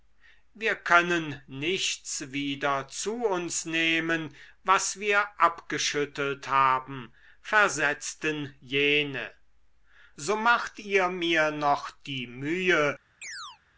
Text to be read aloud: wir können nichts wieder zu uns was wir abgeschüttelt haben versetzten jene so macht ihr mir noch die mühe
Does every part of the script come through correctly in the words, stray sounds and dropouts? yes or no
no